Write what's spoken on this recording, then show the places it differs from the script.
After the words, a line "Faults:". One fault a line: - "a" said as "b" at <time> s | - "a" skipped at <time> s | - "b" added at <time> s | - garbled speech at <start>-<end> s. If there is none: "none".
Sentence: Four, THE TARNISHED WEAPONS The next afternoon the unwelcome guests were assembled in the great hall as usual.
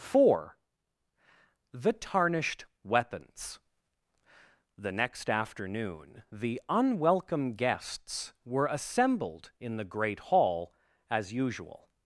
Four, THE TARNISHED WEAPONS The next afternoon the unwelcome guests were assembled in the great hall as usual.
Faults:
none